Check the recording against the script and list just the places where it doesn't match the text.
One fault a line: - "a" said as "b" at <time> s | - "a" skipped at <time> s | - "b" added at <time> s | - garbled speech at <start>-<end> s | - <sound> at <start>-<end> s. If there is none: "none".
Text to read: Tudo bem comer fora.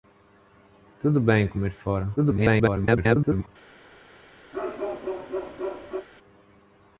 - garbled speech at 2.2-3.5 s
- bark at 4.5-6.1 s